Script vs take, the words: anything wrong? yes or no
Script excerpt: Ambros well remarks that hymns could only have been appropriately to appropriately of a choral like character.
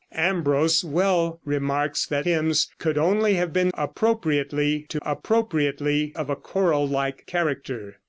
no